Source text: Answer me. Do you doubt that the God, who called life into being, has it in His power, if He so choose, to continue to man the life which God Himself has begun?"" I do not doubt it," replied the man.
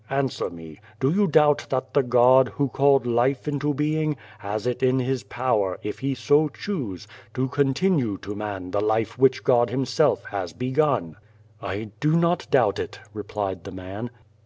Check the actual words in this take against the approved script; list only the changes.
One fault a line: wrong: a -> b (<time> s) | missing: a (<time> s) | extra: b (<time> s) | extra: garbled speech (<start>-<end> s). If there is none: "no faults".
no faults